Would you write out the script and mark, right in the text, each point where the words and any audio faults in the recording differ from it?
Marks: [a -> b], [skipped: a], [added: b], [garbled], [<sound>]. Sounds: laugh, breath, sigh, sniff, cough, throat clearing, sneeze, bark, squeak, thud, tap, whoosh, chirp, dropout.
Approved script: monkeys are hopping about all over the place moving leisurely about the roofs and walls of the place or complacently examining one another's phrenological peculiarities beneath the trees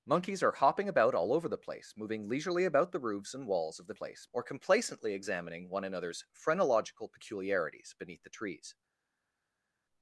monkeys are hopping about all over the place moving leisurely about the roofs and walls of the place or complacently examining one another's phrenological peculiarities beneath the trees